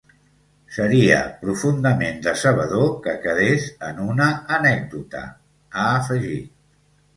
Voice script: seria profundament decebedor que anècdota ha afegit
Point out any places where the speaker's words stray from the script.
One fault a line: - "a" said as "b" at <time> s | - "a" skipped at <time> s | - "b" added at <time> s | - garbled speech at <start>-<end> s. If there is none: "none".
- "quedés en una" added at 3.3 s